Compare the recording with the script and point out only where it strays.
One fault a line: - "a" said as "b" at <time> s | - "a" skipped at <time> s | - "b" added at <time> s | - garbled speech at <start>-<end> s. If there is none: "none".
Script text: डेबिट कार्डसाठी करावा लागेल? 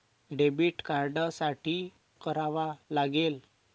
none